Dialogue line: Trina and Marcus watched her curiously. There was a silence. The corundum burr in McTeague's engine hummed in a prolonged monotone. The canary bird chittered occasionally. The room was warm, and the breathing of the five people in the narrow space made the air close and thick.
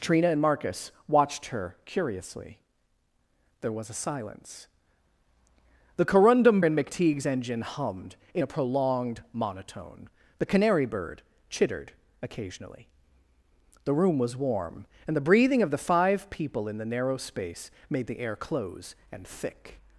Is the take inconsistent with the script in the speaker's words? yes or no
yes